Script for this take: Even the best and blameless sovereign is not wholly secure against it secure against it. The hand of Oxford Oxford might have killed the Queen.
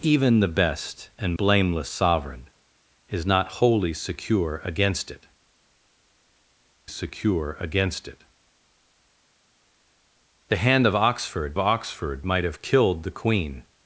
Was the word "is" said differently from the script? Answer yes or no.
no